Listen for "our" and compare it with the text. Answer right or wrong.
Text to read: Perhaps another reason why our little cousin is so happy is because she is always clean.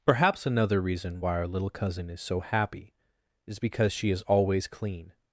right